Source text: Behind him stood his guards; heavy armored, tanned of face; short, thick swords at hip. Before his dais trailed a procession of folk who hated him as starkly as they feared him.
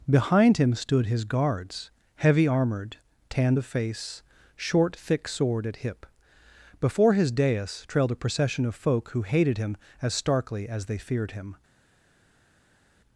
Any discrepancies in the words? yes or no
yes